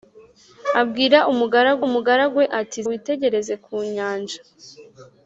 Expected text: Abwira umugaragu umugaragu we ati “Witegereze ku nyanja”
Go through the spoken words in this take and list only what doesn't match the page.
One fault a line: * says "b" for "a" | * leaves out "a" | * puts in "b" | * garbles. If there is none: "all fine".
all fine